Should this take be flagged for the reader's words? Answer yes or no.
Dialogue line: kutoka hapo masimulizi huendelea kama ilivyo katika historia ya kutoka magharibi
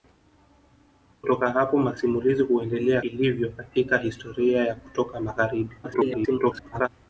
yes